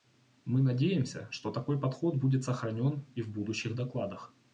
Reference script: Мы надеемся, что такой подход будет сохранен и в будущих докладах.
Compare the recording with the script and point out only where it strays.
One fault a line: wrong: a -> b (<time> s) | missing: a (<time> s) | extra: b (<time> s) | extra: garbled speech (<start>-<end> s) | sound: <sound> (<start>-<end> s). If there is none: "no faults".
no faults